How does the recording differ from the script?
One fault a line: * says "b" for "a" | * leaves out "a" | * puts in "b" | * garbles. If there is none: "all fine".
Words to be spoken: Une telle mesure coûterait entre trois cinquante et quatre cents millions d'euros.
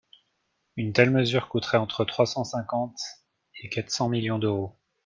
* puts in "cent"